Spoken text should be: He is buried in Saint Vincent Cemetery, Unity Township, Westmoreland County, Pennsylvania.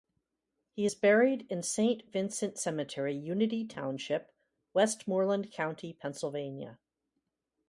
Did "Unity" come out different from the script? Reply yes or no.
no